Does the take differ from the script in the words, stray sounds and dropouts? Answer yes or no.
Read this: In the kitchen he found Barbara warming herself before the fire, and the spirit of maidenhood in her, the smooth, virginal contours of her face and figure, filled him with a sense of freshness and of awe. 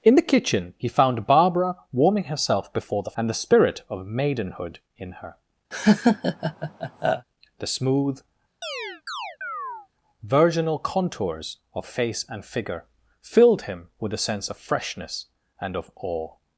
yes